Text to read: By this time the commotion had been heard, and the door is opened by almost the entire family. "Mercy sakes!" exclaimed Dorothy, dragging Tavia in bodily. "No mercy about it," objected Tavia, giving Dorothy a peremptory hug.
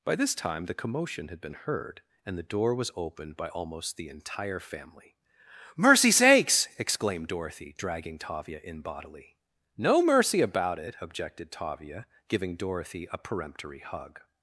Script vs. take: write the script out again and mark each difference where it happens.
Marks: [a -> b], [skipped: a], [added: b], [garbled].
By this time the commotion had been heard, and the door [is -> was] opened by almost the entire family. "Mercy sakes!" exclaimed Dorothy, dragging Tavia in bodily. "No mercy about it," objected Tavia, giving Dorothy a peremptory hug.